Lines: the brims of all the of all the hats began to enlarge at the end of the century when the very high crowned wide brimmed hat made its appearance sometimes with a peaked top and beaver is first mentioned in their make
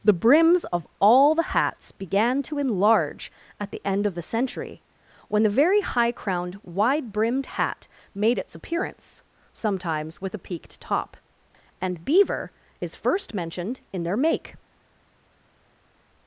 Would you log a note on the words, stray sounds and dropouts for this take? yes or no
yes